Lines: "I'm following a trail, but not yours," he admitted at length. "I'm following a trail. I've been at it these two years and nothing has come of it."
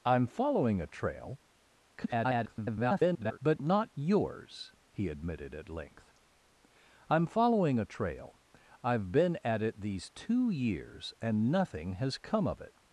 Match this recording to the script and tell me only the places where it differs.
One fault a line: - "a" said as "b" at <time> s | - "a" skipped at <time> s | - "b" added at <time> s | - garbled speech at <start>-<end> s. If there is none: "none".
- garbled speech at 1.9-3.4 s